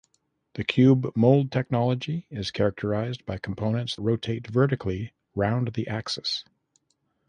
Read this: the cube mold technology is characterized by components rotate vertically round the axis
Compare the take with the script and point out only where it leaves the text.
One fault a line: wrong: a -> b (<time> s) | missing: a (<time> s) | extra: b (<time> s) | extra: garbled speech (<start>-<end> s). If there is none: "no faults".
no faults